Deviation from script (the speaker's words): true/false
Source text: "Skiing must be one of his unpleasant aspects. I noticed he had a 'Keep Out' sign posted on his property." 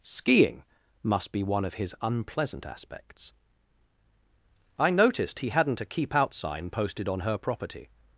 true